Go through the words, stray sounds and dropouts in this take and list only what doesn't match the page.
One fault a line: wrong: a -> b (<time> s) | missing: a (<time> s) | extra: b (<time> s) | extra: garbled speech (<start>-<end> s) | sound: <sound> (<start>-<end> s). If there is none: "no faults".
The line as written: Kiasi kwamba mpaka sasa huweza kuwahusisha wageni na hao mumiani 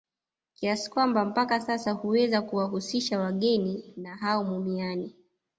no faults